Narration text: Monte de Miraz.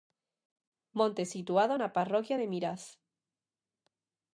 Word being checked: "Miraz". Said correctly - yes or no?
yes